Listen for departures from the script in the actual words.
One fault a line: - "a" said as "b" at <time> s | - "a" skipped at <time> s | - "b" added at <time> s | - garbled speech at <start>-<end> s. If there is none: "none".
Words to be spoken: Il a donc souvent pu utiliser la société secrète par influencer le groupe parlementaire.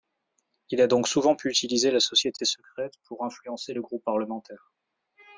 - "par" said as "pour" at 3.0 s